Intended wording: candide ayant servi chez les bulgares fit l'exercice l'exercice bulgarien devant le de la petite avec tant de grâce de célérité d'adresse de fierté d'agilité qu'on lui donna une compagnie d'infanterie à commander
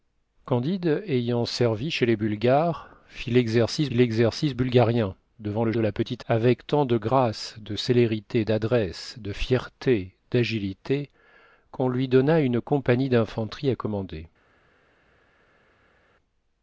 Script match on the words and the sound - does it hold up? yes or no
yes